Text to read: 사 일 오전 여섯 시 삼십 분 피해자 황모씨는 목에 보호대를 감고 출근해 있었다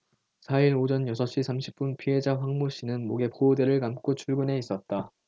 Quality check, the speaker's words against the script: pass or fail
pass